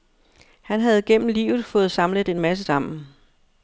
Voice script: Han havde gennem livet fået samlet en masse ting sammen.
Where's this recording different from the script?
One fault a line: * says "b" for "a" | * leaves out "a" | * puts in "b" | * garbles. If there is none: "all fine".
* leaves out "ting"